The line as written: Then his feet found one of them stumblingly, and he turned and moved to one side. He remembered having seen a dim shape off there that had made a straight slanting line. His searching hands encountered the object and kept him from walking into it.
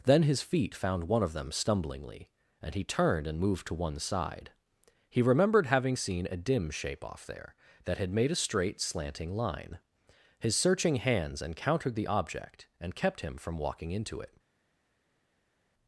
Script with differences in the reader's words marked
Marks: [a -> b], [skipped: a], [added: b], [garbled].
Then his feet found one of them stumblingly, and he turned and moved to one side. He remembered having seen a dim shape off there that had made a straight slanting line. His searching hands encountered the object and kept him from walking into it.